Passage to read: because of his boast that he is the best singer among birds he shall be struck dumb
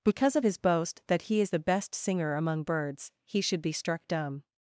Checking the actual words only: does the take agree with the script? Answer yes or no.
no